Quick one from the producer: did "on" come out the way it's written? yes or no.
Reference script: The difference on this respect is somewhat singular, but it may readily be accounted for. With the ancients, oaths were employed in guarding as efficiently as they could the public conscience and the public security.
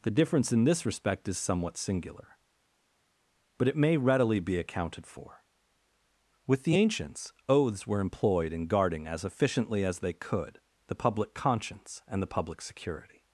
no